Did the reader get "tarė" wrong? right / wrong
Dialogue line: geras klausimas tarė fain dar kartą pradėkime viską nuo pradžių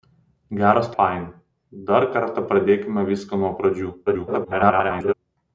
wrong